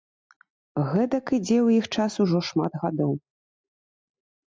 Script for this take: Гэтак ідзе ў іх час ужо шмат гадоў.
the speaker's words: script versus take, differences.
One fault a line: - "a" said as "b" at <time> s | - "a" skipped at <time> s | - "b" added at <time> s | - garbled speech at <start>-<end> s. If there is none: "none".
none